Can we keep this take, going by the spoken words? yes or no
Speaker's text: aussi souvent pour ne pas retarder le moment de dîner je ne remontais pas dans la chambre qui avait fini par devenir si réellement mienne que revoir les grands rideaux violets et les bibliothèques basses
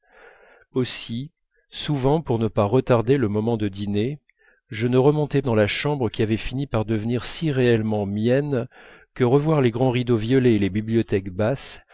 no